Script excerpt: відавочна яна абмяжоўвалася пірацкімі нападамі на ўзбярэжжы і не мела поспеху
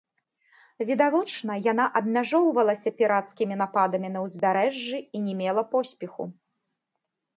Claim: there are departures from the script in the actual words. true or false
false